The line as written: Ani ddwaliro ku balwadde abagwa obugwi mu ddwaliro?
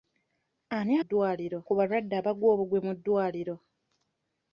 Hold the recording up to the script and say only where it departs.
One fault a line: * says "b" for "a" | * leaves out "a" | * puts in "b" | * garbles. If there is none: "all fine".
all fine